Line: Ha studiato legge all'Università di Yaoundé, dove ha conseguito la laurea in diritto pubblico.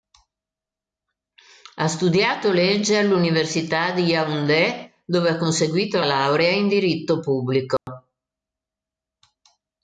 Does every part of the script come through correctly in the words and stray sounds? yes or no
no